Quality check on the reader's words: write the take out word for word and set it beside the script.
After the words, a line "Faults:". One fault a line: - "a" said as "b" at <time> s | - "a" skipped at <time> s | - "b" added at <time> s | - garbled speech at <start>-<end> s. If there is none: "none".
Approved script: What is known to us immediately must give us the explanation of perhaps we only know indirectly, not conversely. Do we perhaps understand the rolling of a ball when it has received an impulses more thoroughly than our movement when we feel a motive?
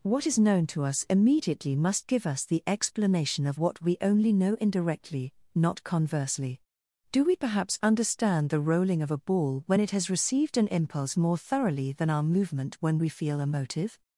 What is known to us immediately must give us the explanation of what we only know indirectly, not conversely. Do we perhaps understand the rolling of a ball when it has received an impulse more thoroughly than our movement when we feel a motive?
Faults:
- "perhaps" said as "what" at 3.6 s
- "impulses" said as "impulse" at 10.7 s